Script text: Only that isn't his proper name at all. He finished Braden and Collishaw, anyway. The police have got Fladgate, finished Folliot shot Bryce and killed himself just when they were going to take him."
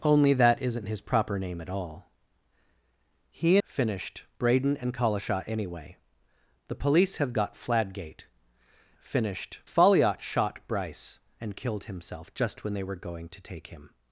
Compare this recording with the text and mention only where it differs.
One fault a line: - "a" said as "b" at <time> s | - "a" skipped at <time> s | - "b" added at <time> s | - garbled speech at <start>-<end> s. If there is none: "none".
none